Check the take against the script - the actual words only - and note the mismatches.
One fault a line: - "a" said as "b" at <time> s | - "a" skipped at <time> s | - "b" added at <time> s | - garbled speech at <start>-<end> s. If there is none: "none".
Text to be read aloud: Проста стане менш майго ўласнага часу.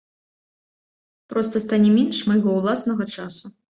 none